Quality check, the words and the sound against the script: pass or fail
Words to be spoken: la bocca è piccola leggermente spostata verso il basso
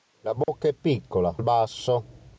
fail